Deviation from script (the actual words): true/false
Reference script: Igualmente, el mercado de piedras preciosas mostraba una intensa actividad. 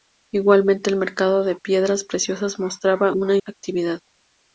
true